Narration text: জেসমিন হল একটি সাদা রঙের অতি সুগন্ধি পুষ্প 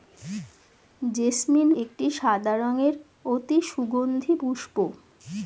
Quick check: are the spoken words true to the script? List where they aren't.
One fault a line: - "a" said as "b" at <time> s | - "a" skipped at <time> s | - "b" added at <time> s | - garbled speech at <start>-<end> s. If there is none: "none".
- "হল" skipped at 1.7 s